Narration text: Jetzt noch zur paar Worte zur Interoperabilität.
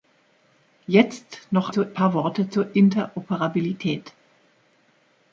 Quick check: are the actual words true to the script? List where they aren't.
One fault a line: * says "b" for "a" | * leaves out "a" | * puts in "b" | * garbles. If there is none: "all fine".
all fine